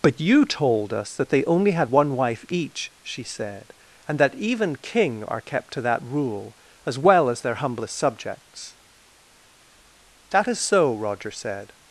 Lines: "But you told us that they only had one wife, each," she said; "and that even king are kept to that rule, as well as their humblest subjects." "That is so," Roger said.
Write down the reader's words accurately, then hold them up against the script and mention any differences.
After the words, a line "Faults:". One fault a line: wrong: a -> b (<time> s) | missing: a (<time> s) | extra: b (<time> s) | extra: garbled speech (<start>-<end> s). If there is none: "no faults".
"But you told us that they only had one wife, each," she said; "and that even king are kept to that rule, as well as their humblest subjects." "That is so," Roger said.
Faults:
no faults